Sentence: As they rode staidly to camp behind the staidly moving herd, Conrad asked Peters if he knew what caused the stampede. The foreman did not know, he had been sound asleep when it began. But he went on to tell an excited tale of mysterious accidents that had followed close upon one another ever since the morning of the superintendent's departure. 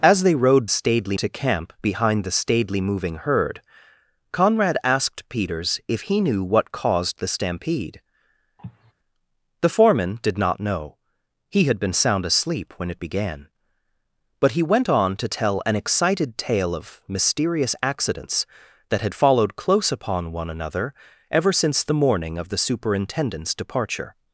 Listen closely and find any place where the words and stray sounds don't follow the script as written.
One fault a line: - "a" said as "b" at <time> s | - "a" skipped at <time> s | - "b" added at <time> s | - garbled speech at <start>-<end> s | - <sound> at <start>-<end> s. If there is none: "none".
- cough at 8.6-8.9 s